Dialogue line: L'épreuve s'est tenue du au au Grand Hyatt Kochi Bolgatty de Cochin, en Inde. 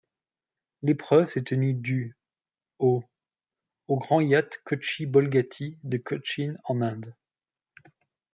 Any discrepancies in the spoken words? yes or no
no